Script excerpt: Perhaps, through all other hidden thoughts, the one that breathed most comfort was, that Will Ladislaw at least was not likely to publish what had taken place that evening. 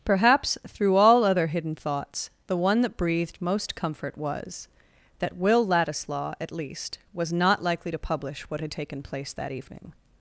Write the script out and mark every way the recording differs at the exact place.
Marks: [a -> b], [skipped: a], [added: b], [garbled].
Perhaps, through all other hidden thoughts, the one that breathed most comfort was, that Will Ladislaw at least was not likely to publish what had taken place that evening.